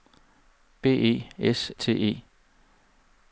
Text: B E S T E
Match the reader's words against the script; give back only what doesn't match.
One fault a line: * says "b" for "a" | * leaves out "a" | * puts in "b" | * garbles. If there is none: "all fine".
all fine